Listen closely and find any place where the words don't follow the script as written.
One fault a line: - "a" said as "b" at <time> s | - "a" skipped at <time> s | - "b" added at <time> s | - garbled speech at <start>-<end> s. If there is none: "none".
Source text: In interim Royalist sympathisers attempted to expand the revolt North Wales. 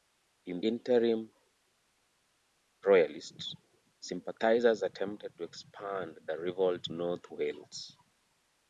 none